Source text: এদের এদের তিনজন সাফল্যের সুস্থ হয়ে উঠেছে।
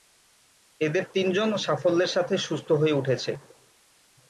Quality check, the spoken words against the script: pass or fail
fail